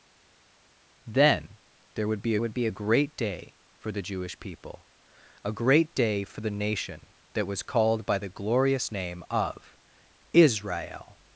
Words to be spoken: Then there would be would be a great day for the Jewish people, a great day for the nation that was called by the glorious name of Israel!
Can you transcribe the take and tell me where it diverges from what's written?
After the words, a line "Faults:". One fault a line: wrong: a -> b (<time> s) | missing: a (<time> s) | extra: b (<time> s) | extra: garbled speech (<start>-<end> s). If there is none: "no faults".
Then there would be would be a great day for the Jewish people, a great day for the nation that was called by the glorious name of Israel!
Faults:
no faults